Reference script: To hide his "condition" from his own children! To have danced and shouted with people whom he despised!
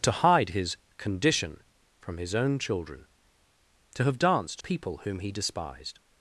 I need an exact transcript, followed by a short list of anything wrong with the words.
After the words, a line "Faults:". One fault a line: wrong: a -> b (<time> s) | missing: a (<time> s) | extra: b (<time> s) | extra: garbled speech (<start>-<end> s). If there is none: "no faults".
To hide his "condition" from his own children! To have danced people whom he despised!
Faults:
missing: and shouted with (4.6 s)